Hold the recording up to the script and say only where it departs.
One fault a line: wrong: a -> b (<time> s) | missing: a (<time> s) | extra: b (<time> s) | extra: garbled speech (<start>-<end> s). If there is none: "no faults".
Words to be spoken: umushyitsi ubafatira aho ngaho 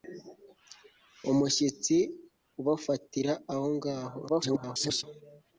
extra: garbled speech (4.3-5.0 s)